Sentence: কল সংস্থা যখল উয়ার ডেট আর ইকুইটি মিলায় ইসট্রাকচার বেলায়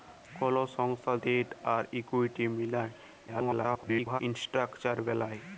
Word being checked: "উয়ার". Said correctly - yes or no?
no